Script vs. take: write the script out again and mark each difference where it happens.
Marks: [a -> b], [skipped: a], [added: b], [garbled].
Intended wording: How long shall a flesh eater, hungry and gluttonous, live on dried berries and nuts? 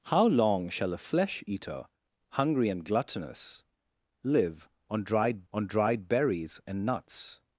How long shall a flesh eater, hungry and gluttonous, live on dried [added: on dried] berries and nuts?